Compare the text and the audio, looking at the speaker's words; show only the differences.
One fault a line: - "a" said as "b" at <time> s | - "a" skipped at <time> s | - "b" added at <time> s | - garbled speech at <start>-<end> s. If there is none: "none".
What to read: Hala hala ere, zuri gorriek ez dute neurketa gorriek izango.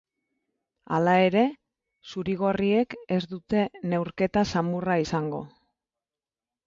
- "hala" skipped at 1.1 s
- "gorriek" said as "samurra" at 4.5 s